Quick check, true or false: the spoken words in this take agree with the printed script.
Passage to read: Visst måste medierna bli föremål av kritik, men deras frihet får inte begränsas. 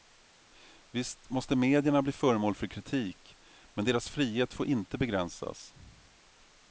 false